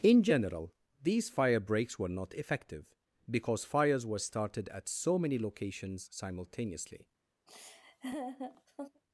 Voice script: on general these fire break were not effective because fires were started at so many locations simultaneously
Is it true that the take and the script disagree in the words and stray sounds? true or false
true